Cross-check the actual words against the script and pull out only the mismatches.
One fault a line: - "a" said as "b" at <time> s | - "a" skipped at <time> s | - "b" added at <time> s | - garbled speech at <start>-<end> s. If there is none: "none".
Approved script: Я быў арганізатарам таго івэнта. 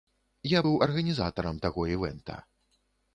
none